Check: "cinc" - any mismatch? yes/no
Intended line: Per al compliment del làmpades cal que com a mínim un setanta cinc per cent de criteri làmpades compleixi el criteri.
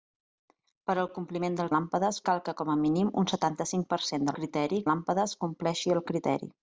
no